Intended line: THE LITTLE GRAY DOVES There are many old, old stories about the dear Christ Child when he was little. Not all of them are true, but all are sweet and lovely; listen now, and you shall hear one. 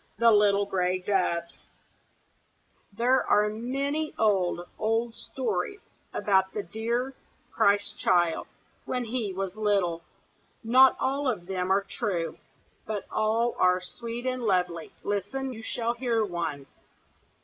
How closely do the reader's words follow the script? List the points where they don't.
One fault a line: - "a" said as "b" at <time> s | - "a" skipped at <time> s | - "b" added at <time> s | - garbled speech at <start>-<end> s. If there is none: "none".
- "now and" skipped at 15.5 s